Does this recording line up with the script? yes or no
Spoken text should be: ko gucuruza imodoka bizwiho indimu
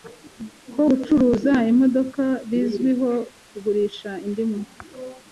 no